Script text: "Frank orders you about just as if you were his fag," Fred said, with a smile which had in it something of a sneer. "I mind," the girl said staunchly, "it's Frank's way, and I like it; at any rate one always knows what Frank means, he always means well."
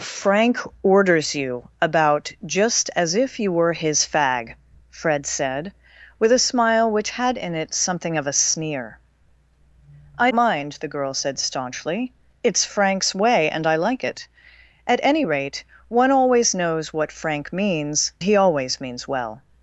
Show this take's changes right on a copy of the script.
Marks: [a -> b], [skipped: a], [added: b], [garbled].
"Frank orders you about just as if you were his fag," Fred said, with a smile which had in it something of a sneer. "I mind," the girl said staunchly, "it's Frank's way, and I like it; at any rate one always knows what Frank means, he always means well."